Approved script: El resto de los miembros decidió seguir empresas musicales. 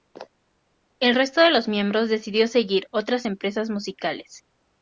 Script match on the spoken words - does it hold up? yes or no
no